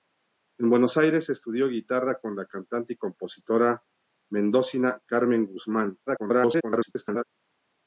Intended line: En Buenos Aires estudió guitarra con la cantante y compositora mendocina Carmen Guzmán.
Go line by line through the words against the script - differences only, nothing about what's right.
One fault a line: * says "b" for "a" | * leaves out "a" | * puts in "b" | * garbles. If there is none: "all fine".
* garbles